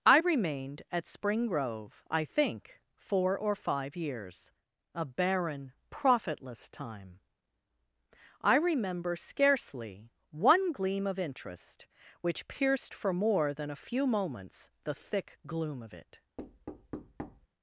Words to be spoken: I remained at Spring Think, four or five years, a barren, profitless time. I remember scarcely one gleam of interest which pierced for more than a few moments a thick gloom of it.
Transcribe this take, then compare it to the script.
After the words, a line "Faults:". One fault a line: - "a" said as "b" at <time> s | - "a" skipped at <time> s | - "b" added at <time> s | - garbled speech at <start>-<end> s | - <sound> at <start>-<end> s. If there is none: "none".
I remained at Spring Grove, I think, four or five years, a barren, profitless time. I remember scarcely one gleam of interest which pierced for more than a few moments the thick gloom of it.
Faults:
- "Grove I" added at 1.5 s
- "a" said as "the" at 14.8 s
- thud at 16.4-17.5 s